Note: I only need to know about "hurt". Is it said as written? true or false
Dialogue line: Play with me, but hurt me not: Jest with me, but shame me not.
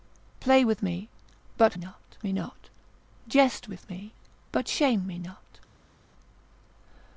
false